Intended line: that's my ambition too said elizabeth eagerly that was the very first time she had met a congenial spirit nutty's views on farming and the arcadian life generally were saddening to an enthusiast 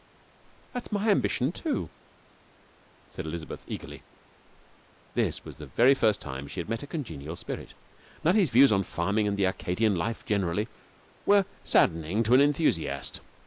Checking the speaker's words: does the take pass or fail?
fail